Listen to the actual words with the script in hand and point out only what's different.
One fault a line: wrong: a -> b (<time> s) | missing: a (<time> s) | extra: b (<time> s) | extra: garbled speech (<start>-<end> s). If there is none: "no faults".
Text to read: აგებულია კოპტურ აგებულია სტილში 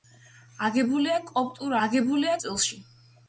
no faults